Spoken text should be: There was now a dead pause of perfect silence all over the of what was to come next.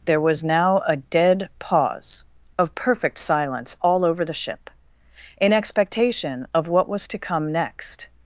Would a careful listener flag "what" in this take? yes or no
no